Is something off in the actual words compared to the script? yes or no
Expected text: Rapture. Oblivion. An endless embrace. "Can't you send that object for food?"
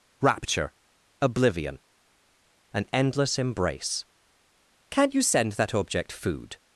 yes